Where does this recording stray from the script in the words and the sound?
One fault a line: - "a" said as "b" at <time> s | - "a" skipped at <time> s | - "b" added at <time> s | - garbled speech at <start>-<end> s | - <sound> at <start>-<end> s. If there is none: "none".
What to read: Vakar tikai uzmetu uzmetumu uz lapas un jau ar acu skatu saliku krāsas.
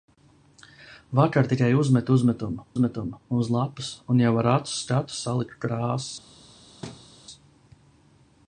- "uzmetumu" added at 2.7 s
- thud at 6.8-7.1 s